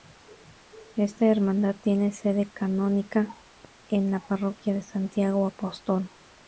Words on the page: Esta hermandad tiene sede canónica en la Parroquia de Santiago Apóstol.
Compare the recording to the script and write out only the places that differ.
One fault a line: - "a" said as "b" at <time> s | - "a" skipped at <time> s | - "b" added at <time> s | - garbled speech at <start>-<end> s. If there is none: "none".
none